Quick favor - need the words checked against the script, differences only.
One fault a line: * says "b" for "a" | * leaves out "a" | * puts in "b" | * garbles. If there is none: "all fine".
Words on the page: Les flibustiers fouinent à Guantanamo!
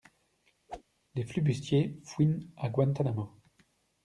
all fine